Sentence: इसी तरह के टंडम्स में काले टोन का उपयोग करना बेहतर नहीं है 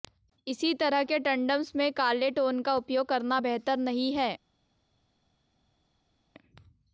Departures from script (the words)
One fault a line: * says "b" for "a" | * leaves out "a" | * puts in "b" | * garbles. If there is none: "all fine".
all fine